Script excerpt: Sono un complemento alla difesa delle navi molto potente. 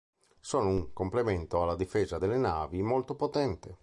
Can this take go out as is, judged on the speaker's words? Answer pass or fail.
pass